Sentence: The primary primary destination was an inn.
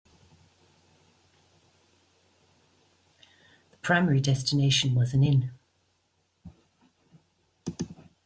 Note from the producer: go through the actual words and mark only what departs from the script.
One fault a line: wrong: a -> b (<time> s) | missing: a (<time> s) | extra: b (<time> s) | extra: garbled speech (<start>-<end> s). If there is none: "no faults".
missing: primary (4.2 s)